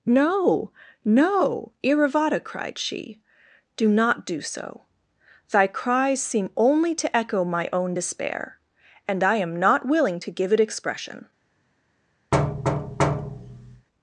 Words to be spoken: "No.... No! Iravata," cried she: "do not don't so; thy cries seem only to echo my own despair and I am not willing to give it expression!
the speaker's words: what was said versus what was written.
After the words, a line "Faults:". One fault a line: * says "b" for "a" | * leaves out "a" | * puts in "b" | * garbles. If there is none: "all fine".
"No.... No! Iravata," cried she: "do not do so; thy cries seem only to echo my own despair and I am not willing to give it expression!
Faults:
* says "do" for "don't"